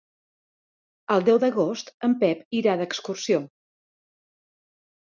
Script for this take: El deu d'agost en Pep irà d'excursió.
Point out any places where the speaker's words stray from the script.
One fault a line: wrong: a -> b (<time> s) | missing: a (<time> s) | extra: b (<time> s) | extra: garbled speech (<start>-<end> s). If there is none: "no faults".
no faults